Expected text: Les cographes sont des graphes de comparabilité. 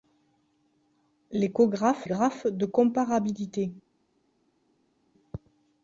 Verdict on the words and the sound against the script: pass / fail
fail